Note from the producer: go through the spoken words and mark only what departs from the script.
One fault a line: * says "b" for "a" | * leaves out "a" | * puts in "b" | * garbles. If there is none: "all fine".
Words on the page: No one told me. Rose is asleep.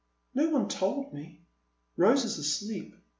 all fine